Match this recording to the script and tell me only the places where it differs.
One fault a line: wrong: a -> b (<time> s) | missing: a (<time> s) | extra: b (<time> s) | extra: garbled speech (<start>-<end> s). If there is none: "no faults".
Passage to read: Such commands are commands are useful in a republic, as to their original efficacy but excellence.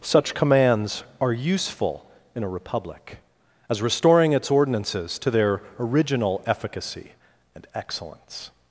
missing: commands are (1.3 s)
extra: restoring its ordinances (3.8 s)
wrong: but -> and (7.5 s)